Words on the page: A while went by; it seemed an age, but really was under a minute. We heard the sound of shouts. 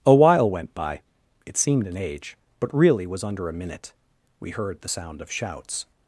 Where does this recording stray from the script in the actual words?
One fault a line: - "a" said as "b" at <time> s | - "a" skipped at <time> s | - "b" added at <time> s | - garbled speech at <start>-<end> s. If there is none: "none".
none